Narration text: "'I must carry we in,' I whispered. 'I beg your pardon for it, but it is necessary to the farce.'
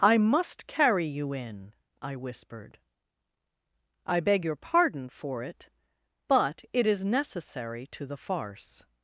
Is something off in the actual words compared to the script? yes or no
yes